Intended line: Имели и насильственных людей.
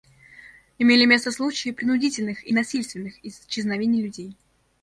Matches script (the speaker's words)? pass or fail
fail